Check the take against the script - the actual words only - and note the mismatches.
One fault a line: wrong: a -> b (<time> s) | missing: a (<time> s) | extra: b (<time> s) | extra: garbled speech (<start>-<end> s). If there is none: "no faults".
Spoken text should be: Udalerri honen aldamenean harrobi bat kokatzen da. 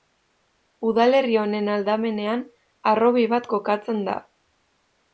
no faults